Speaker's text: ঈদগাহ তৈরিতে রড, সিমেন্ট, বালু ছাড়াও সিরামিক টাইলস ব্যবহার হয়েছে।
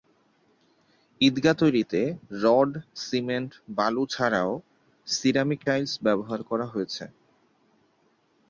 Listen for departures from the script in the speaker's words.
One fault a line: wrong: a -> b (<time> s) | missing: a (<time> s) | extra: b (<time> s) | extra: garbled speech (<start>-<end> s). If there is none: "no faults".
extra: করা (6.5 s)